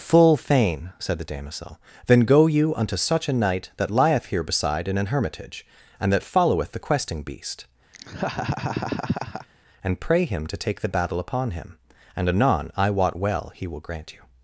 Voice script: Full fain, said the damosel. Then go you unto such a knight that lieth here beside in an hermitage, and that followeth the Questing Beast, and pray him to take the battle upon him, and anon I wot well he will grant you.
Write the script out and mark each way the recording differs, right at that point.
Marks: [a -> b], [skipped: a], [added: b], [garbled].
Full fain, said the damosel. Then go you unto such a knight that lieth here beside in an hermitage, and that followeth the Questing Beast, and pray him to take the battle upon him, and anon I wot well he will grant you.